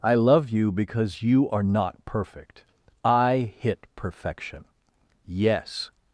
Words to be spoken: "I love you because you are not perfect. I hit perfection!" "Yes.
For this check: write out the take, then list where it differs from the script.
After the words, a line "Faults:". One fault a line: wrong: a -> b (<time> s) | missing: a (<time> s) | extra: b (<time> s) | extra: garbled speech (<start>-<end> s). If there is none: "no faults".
"I love you because you are not perfect. I hit perfection!" "Yes.
Faults:
no faults